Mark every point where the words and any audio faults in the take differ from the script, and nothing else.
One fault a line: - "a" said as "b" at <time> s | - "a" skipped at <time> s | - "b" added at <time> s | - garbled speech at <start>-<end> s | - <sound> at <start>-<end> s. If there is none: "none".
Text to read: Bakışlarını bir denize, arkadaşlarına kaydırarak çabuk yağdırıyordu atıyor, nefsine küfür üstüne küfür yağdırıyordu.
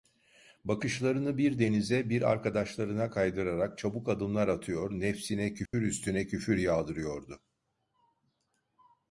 - "bir" added at 2.1 s
- "yağdırıyordu" said as "adımlar" at 4.1 s
- dropout at 5.7-5.7 s